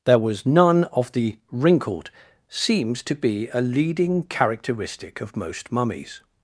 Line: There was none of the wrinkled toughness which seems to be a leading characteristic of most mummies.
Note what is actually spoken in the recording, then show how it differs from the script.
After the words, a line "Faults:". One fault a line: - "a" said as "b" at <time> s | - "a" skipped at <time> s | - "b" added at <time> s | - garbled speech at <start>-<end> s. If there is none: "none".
There was none of the wrinkled seems to be a leading characteristic of most mummies.
Faults:
- "toughness which" skipped at 2.1 s